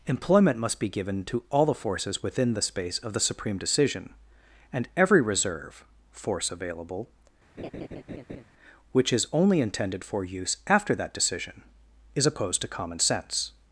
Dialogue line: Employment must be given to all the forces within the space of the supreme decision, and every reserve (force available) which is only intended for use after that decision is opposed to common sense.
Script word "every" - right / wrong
right